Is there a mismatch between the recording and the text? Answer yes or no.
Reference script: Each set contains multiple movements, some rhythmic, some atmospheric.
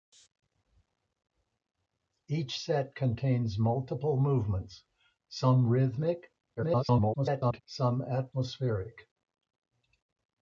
yes